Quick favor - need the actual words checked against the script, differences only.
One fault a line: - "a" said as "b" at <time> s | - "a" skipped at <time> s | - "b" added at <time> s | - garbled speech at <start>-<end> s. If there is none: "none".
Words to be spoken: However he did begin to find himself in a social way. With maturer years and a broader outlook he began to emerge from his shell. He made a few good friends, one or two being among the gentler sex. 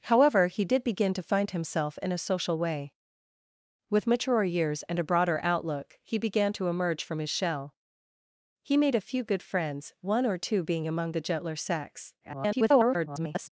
- garbled speech at 12.2-13.5 s